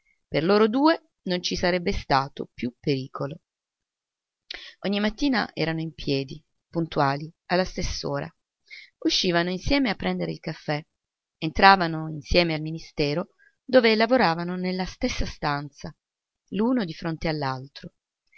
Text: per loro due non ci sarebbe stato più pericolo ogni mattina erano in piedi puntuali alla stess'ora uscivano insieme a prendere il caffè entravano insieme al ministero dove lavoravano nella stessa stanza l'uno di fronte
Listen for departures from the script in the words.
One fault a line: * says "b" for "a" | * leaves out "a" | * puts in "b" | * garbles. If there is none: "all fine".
all fine